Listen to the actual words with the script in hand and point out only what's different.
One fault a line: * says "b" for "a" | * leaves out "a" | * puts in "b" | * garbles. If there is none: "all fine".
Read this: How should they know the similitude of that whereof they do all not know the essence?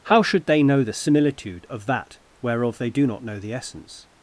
* leaves out "all"